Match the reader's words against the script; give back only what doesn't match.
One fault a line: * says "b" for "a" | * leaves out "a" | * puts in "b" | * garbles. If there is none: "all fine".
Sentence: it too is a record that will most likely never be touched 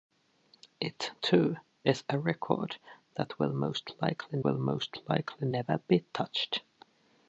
* puts in "will most likely"